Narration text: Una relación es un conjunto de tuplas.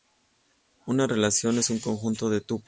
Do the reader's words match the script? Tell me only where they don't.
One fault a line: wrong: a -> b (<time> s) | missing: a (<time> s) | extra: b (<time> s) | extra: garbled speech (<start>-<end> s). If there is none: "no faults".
no faults